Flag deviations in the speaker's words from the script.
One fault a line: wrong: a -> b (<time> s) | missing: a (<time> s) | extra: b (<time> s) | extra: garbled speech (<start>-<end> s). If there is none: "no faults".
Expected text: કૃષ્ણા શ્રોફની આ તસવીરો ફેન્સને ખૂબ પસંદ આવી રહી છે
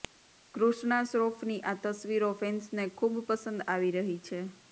no faults